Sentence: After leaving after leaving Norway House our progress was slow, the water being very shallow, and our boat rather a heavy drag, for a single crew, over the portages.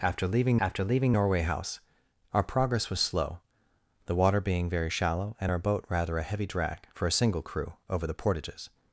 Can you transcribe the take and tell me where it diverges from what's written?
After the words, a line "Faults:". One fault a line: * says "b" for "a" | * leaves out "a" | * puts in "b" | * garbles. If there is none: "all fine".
After leaving after leaving Norway House our progress was slow, the water being very shallow, and our boat rather a heavy drag, for a single crew, over the portages.
Faults:
all fine